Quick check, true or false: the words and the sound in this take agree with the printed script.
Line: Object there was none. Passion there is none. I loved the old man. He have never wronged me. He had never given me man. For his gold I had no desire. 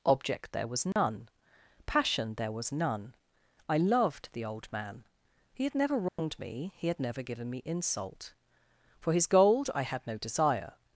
false